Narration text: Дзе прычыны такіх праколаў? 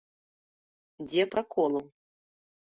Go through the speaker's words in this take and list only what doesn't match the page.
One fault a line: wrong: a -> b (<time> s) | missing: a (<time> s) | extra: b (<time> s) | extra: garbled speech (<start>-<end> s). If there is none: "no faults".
missing: прычыны такіх (1.2 s)